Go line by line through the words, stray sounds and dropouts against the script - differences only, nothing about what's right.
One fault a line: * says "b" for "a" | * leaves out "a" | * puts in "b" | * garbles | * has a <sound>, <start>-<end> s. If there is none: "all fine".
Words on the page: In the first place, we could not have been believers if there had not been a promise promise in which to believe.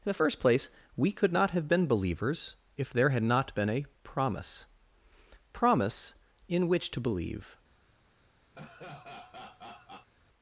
* has a laugh, 8.5-10.1 s